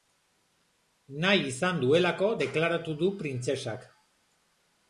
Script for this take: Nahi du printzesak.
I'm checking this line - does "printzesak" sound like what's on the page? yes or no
yes